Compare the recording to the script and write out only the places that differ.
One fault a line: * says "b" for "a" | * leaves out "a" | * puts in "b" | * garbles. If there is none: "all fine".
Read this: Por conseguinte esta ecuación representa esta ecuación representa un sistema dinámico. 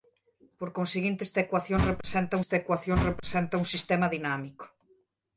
all fine